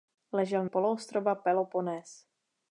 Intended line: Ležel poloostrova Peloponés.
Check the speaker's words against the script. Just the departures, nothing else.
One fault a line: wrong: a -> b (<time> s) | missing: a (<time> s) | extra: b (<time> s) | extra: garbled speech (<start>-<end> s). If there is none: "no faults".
no faults